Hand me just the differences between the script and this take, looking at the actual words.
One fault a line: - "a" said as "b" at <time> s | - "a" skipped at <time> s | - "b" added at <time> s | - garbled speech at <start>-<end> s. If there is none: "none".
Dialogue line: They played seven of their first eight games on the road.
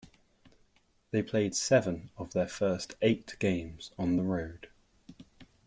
none